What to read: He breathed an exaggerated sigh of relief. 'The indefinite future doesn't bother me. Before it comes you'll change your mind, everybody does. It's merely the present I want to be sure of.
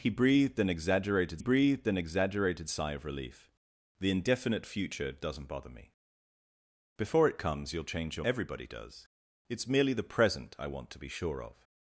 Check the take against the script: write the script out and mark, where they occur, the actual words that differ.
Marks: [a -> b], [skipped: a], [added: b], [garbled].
He breathed an exaggerated [added: breathed an exaggerated] sigh of relief. 'The indefinite future doesn't bother me. Before it comes you'll change your [skipped: mind,] everybody does. It's merely the present I want to be sure of.